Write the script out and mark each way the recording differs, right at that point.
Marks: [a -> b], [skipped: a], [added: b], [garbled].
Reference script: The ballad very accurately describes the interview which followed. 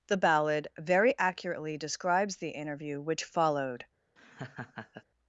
The ballad very accurately describes the interview which followed.